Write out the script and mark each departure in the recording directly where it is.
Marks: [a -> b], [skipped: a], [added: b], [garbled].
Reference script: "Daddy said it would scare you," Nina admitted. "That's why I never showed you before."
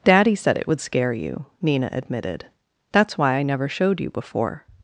"Daddy said it would scare you," Nina admitted. "That's why I never showed you before."